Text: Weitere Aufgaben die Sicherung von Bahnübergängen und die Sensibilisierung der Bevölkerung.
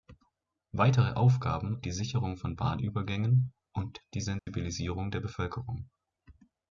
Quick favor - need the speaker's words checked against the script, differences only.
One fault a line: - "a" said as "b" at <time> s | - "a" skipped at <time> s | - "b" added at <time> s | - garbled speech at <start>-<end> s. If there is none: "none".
none